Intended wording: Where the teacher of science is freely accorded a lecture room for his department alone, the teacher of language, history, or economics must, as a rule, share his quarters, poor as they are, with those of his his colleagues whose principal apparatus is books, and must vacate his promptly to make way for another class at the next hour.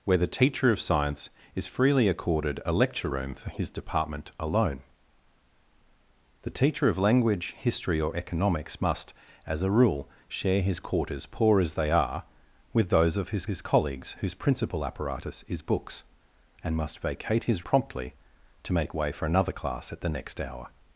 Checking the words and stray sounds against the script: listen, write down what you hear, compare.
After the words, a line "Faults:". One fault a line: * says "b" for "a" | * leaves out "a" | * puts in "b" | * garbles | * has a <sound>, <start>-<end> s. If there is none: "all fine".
Where the teacher of science is freely accorded a lecture room for his department alone, the teacher of language, history, or economics must, as a rule, share his quarters, poor as they are, with those of his his colleagues whose principal apparatus is books, and must vacate his promptly to make way for another class at the next hour.
Faults:
all fine